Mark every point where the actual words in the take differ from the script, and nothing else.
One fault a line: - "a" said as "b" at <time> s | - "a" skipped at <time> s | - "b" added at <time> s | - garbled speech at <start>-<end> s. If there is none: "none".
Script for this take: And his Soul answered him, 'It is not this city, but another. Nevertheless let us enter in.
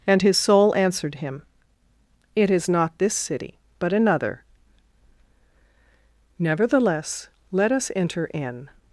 none